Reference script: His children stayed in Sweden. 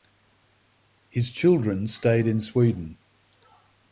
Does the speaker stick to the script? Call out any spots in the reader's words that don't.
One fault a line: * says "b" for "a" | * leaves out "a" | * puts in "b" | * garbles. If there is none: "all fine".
all fine